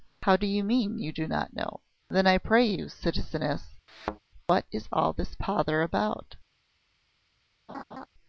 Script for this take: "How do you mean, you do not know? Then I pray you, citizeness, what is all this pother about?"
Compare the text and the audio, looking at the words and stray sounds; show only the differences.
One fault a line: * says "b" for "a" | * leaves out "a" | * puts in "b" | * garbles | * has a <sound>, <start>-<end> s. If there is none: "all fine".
* has a thud, 3.9-4.2 s
* has a laugh, 7.7-8.1 s